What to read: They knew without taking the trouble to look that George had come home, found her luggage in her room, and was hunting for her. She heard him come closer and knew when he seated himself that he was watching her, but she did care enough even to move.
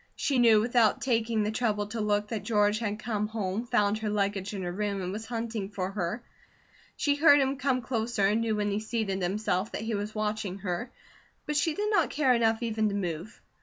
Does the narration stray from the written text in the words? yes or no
yes